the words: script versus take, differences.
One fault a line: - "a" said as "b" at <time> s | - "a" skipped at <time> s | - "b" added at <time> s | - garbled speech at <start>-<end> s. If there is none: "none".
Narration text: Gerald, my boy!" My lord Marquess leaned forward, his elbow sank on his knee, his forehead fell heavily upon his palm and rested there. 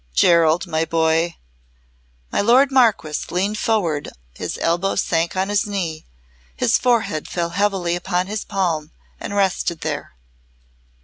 none